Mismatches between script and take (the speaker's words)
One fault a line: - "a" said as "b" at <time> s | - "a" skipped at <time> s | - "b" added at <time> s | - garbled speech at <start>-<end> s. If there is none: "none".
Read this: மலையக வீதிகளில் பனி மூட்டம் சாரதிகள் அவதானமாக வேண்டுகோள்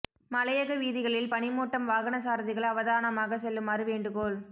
- "வாகன" added at 1.9 s
- "செல்லுமாறு" added at 3.4 s